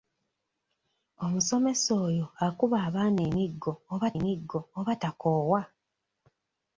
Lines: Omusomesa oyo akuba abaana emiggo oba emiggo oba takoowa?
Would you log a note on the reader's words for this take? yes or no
no